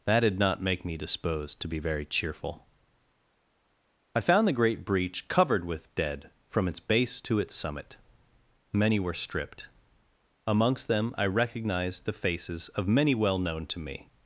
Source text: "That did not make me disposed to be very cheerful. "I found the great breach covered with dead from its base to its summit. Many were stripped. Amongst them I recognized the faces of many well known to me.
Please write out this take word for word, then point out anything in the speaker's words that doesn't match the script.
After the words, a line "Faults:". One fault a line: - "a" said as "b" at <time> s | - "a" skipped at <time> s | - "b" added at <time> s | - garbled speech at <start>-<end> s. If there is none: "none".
"That did not make me disposed to be very cheerful. "I found the great breach covered with dead from its base to its summit. Many were stripped. Amongst them I recognized the faces of many well known to me.
Faults:
none